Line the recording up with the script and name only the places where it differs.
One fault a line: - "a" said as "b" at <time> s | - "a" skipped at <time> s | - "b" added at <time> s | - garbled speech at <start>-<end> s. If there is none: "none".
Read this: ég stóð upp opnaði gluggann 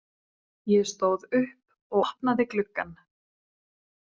none